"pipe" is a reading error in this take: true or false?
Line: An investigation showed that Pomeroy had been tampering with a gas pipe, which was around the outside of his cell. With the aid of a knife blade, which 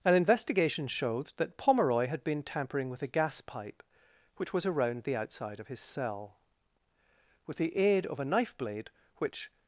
false